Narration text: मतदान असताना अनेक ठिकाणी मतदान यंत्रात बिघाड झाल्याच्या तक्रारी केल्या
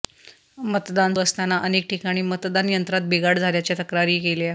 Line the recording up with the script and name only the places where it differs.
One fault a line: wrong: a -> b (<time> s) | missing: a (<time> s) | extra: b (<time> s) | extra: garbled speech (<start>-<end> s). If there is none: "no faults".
no faults